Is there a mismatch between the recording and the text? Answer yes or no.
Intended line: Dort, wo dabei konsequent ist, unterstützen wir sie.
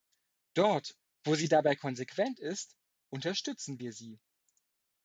yes